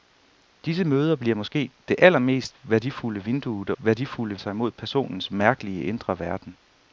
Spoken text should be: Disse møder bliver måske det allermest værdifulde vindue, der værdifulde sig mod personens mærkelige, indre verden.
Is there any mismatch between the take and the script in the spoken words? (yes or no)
no